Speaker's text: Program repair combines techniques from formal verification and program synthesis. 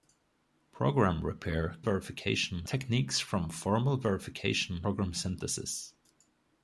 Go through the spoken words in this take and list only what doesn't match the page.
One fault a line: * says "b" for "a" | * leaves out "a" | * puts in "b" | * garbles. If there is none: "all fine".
* says "verification" for "combines"
* leaves out "and"